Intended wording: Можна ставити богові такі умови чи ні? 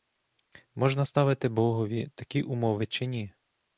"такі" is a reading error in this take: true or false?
false